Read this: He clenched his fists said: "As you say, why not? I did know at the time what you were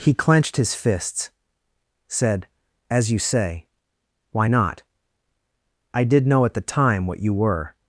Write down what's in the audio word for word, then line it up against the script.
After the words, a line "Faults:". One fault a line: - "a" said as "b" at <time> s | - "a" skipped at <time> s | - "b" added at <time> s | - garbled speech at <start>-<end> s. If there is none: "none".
He clenched his fists said: "As you say, why not? I did know at the time what you were
Faults:
none